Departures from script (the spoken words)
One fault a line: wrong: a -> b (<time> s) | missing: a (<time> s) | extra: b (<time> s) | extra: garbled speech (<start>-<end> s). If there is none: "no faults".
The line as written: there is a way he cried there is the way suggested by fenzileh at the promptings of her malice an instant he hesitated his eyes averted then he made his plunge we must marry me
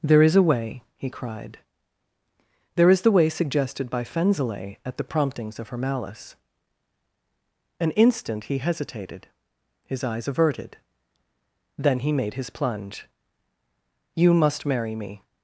wrong: we -> you (14.1 s)